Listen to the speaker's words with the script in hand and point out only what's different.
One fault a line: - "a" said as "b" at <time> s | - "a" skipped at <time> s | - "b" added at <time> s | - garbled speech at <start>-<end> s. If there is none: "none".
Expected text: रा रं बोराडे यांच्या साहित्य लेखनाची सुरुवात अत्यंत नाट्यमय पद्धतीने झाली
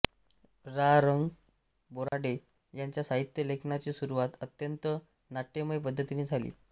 none